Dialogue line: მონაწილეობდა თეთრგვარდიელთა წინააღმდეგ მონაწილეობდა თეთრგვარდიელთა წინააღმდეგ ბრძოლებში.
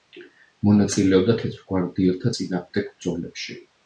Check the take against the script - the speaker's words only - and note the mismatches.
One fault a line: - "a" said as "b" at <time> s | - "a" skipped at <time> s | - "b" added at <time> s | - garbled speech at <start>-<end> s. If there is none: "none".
- "მონაწილეობდა თეთრგვარდიელთა წინააღმდეგ" skipped at 2.9 s